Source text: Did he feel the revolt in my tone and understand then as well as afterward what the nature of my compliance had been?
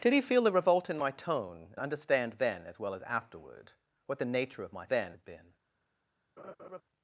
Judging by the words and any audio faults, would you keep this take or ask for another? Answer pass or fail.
fail